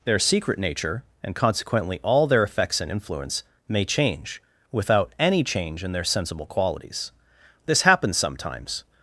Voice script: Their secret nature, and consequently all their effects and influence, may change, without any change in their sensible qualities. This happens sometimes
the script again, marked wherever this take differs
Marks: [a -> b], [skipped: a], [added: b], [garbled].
Their secret nature, and consequently all their effects and influence, may change, without any change in their sensible qualities. This happens sometimes